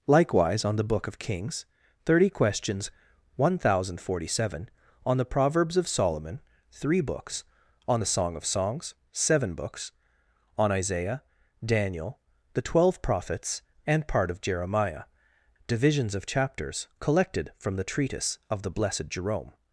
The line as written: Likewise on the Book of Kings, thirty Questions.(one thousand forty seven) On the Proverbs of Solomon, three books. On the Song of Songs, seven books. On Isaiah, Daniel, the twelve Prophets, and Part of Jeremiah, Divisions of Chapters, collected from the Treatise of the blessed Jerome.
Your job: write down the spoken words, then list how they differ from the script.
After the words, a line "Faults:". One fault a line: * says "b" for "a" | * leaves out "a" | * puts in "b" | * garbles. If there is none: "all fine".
Likewise on the Book of Kings, thirty Questions.(one thousand forty seven) On the Proverbs of Solomon, three books. On the Song of Songs, seven books. On Isaiah, Daniel, the twelve Prophets, and Part of Jeremiah, Divisions of Chapters, collected from the Treatise of the blessed Jerome.
Faults:
all fine